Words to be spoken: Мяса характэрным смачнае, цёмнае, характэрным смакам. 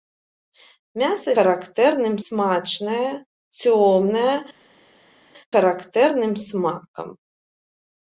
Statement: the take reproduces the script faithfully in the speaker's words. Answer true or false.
true